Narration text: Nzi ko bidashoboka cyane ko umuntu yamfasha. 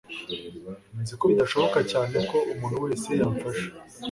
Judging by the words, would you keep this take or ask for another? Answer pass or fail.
fail